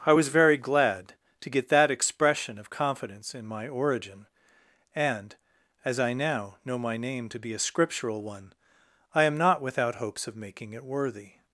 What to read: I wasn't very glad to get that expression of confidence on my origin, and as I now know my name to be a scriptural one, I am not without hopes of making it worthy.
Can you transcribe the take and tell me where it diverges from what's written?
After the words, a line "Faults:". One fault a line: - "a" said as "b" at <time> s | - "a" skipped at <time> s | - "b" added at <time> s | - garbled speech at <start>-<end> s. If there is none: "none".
I was very glad to get that expression of confidence in my origin, and as I now know my name to be a scriptural one, I am not without hopes of making it worthy.
Faults:
- "wasn't" said as "was" at 0.1 s
- "on" said as "in" at 3.3 s